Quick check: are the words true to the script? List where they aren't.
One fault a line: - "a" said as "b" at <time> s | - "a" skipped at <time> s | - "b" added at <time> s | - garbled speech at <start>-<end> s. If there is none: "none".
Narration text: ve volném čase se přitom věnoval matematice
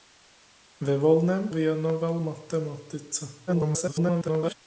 - "čase se přitom" skipped at 1.5 s
- garbled speech at 3.5-4.5 s